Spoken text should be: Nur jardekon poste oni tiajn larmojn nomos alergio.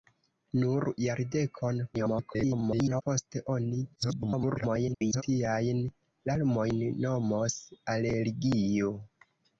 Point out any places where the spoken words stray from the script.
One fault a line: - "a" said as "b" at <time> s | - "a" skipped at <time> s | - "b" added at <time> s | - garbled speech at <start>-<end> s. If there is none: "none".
- garbled speech at 1.9-3.0 s
- garbled speech at 3.9-5.2 s